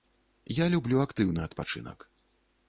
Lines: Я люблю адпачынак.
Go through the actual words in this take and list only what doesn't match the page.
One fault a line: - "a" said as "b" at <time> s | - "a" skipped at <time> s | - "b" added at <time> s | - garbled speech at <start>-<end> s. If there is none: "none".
- "актыўны" added at 1.1 s